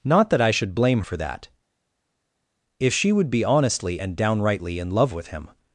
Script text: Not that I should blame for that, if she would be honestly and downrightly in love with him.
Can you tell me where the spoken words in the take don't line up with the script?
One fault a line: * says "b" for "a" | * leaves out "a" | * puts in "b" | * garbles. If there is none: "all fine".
all fine